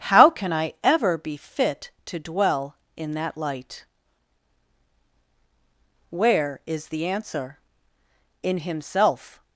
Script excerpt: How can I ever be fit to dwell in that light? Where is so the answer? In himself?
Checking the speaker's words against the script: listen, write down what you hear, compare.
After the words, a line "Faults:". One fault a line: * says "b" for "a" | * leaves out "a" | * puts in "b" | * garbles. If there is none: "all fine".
How can I ever be fit to dwell in that light? Where is the answer? In himself?
Faults:
* leaves out "so"